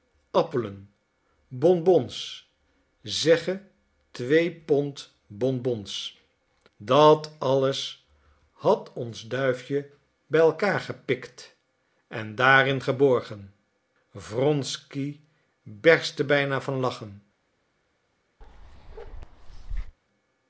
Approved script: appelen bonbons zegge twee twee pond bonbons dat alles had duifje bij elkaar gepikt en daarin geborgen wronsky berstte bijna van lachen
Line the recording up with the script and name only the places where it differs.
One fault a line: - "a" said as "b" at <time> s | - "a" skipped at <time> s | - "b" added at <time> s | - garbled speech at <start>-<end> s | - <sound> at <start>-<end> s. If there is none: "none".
- "twee" skipped at 4.5 s
- "ons" added at 8.9 s
- bark at 18.4-20.0 s